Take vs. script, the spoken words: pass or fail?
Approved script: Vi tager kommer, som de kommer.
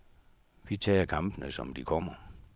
fail